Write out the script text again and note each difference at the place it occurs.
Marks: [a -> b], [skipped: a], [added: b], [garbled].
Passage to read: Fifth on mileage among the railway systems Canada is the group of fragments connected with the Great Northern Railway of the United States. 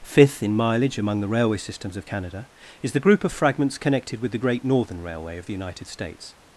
Fifth [on -> in] mileage among the railway systems [added: of] Canada is the group of fragments connected with the Great Northern Railway of the United States.